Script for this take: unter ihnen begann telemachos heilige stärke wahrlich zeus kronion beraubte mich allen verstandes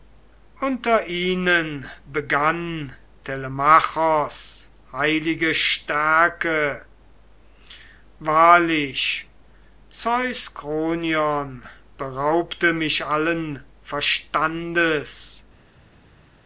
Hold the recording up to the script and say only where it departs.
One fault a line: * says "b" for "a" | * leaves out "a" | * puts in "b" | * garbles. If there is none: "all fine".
all fine